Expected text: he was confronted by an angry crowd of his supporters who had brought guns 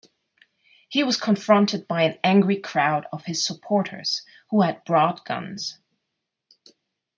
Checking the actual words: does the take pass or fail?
pass